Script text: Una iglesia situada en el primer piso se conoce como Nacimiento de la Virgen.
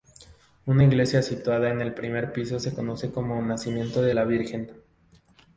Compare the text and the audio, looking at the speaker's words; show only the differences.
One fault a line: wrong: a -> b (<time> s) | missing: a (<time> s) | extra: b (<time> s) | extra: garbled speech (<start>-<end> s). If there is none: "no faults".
no faults